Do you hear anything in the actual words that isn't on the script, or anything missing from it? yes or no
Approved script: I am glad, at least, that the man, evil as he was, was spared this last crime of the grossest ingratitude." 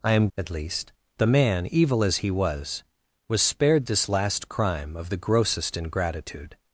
yes